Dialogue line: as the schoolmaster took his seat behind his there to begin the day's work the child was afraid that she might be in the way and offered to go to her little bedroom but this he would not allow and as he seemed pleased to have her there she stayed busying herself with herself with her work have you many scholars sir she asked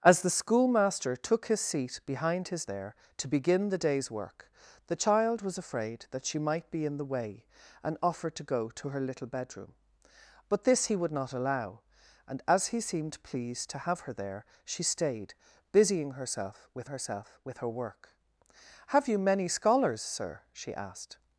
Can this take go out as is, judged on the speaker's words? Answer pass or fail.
pass